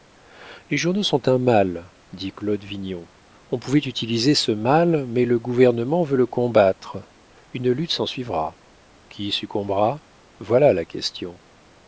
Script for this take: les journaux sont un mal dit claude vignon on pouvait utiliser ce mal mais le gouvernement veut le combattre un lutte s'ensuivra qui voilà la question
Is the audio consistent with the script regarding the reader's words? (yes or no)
no